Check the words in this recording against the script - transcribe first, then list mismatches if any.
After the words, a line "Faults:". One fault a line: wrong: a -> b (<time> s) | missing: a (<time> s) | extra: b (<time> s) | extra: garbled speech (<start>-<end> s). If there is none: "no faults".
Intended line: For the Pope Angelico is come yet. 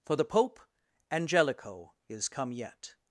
For the Pope Angelico is come yet.
Faults:
no faults